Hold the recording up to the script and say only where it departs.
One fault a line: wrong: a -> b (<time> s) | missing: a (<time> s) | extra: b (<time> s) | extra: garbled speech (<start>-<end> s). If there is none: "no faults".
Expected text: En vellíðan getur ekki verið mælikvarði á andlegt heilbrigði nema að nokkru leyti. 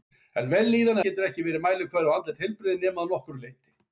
no faults